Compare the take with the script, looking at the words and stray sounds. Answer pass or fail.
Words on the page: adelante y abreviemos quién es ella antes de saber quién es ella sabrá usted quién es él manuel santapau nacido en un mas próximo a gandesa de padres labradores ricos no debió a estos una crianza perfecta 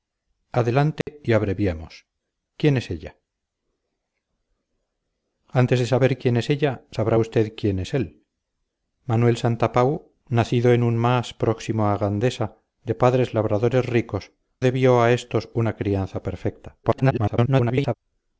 fail